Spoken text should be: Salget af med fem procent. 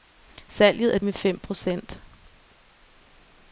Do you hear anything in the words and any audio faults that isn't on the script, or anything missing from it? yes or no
no